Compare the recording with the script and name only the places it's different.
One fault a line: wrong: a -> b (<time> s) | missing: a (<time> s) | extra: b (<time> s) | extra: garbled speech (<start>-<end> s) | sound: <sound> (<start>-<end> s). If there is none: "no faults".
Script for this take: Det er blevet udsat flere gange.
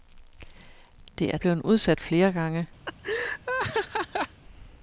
sound: laugh (2.9-4.4 s)